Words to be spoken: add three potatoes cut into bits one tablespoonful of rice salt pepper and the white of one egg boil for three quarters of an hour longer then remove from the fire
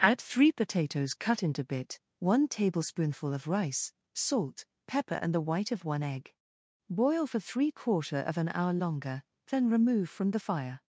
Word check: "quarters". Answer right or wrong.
wrong